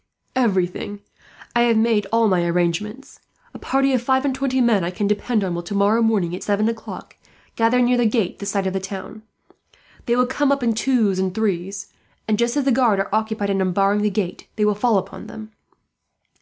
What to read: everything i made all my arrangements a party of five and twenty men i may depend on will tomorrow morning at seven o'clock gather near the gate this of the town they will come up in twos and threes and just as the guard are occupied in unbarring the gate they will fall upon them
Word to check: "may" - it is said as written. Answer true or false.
false